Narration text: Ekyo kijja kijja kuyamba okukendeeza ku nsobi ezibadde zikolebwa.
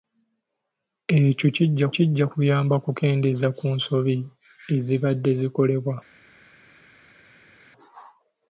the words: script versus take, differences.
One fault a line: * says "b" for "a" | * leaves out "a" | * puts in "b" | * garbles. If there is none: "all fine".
all fine